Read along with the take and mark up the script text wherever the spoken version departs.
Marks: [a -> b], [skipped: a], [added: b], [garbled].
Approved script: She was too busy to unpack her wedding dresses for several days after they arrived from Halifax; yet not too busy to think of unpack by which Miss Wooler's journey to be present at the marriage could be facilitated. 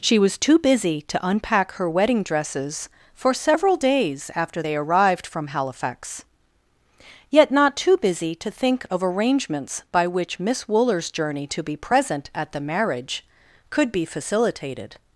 She was too busy to unpack her wedding dresses for several days after they arrived from Halifax; yet not too busy to think of [unpack -> arrangements] by which Miss Wooler's journey to be present at the marriage could be facilitated.